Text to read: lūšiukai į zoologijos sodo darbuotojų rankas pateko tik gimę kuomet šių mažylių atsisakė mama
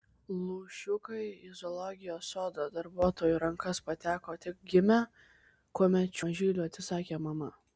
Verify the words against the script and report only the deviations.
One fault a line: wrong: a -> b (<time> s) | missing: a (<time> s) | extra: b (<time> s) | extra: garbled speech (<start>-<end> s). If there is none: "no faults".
missing: šių (6.2 s)